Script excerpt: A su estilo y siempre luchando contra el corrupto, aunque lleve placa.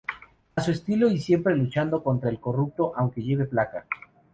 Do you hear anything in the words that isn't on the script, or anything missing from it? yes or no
no